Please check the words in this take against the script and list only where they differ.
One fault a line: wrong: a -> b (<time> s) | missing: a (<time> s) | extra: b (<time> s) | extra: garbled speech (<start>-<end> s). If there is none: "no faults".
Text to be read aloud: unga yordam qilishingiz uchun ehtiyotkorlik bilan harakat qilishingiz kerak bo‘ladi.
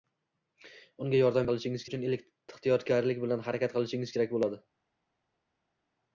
no faults